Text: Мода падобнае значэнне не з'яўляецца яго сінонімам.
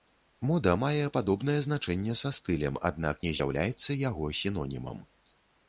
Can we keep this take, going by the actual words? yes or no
no